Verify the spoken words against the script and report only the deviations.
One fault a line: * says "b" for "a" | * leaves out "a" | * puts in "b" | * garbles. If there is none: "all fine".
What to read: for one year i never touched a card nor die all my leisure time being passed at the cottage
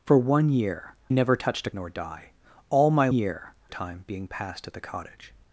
* leaves out "i"
* leaves out "card"
* says "year" for "leisure"